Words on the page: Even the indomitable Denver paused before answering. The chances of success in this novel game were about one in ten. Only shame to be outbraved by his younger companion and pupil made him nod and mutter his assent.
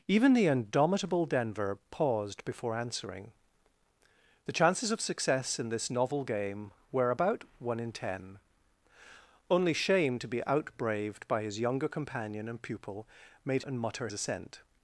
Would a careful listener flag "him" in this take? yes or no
yes